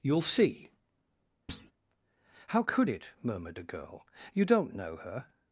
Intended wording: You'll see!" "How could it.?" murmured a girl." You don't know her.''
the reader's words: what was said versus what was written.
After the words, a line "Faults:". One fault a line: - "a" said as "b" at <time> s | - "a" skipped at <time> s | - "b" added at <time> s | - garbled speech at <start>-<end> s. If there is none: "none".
You'll see!" "How could it.?" murmured a girl." You don't know her.''
Faults:
none